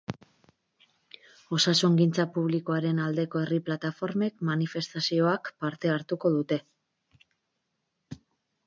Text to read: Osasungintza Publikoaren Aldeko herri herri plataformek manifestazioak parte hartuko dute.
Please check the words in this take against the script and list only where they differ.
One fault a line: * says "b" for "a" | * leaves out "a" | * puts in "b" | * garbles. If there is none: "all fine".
* leaves out "herri"